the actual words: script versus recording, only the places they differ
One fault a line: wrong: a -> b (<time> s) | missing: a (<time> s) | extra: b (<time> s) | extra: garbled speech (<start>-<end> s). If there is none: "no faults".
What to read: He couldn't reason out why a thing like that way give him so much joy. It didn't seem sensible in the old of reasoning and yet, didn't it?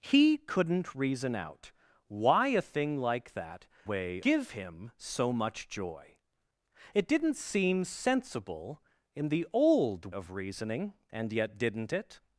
no faults